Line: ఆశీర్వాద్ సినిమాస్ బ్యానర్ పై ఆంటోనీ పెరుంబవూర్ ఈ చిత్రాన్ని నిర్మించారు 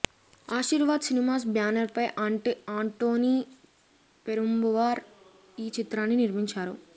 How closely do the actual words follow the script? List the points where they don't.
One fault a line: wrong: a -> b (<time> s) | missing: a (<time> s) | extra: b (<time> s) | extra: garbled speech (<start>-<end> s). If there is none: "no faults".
no faults